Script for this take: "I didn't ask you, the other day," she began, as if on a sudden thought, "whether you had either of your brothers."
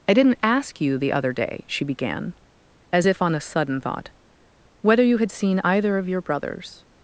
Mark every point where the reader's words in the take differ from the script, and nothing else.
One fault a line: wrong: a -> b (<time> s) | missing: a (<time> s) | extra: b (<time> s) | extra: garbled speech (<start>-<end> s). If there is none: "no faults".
extra: seen (5.3 s)